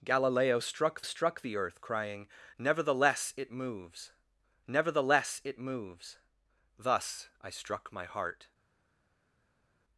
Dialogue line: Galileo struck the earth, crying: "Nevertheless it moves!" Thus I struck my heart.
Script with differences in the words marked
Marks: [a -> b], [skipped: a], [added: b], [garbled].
Galileo struck [added: struck] the earth, crying: "Nevertheless it moves!" [added: nevertheless it moves] Thus I struck my heart.